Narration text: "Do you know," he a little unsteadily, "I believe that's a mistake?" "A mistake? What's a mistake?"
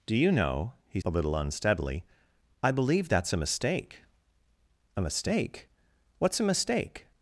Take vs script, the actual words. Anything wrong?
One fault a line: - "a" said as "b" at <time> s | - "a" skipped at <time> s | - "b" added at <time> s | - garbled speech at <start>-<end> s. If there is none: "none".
none